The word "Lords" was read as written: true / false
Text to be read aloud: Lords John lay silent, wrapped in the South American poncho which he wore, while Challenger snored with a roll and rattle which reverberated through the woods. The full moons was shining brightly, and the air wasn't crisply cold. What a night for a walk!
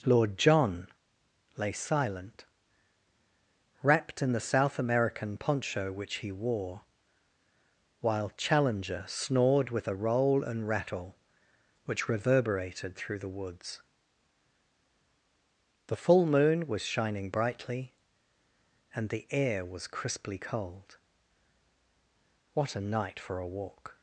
false